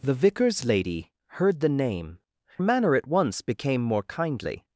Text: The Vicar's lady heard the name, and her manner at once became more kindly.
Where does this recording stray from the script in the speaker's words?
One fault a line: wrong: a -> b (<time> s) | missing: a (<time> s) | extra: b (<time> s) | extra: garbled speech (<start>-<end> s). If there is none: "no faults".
missing: and her (2.2 s)